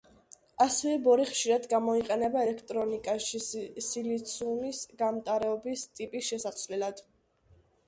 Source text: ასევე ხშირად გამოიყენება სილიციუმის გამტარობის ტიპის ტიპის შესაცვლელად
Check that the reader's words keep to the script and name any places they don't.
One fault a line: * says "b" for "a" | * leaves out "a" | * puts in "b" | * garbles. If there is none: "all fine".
* puts in "ბორი"
* puts in "ელექტრონიკაში"
* leaves out "ტიპის"